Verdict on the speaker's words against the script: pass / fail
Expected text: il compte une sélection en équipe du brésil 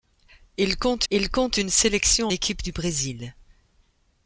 fail